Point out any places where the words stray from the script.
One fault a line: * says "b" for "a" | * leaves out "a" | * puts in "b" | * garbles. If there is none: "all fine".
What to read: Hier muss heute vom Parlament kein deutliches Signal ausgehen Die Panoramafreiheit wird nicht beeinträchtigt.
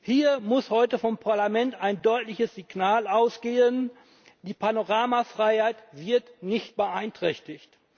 * says "ein" for "kein"